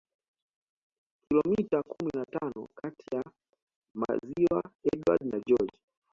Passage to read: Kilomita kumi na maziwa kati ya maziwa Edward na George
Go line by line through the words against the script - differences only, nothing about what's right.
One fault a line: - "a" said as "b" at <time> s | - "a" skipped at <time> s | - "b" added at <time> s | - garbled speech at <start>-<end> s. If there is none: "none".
- "maziwa" said as "tano" at 2.2 s